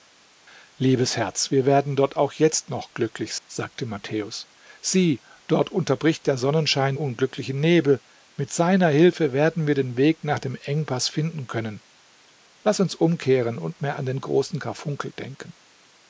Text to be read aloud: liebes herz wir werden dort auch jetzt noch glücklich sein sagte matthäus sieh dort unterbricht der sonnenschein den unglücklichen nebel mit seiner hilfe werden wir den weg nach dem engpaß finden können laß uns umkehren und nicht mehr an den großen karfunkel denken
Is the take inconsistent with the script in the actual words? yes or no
yes